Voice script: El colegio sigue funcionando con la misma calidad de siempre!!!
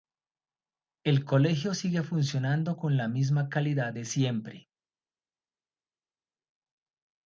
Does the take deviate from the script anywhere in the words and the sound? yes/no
no